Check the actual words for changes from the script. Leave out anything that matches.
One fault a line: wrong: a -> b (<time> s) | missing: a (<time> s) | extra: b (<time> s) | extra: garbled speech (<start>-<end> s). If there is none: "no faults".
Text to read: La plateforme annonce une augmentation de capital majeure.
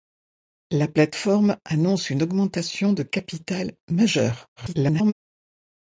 extra: garbled speech (4.6-5.1 s)